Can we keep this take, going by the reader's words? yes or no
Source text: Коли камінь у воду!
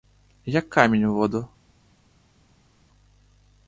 no